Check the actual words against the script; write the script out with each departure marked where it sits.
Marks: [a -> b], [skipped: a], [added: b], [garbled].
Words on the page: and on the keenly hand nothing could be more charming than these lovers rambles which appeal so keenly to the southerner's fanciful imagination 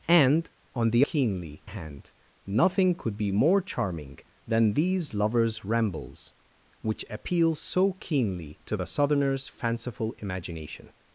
and on the keenly hand nothing could be more charming than these lovers rambles which appeal so keenly to the southerner's fanciful imagination